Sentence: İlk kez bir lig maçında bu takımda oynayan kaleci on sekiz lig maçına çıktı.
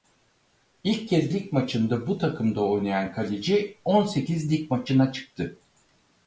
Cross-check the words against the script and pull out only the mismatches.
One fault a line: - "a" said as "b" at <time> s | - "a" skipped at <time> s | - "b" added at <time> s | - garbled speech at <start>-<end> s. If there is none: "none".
- "bir" skipped at 1.3 s